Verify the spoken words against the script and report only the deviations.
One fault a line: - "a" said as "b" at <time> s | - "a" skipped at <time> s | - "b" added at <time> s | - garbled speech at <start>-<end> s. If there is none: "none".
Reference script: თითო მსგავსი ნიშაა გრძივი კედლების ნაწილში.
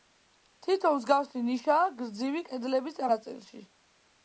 none